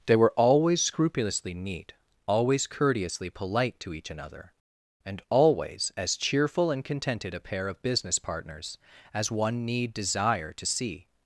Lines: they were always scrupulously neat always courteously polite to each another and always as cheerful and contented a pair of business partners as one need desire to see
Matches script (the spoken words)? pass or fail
pass